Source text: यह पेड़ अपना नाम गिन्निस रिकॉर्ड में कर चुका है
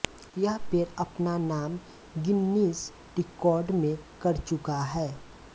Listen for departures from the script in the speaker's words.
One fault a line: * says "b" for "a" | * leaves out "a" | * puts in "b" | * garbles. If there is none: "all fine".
all fine